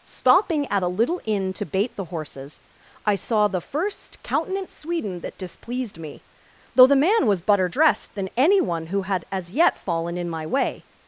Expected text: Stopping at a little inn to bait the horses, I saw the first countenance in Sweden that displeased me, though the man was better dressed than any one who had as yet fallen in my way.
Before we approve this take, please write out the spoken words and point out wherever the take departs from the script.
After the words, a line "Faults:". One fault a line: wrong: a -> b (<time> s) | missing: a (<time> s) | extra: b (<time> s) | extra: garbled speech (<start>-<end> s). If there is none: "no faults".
Stopping at a little inn to bait the horses, I saw the first countenance Sweden that displeased me, though the man was better dressed than any one who had as yet fallen in my way.
Faults:
missing: in (4.7 s)